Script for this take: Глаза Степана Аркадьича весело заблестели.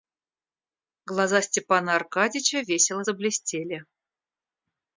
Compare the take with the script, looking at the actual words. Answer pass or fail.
pass